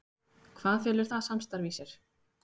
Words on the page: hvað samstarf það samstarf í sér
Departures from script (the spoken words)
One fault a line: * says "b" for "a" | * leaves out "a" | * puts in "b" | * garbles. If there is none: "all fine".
* says "felur" for "samstarf"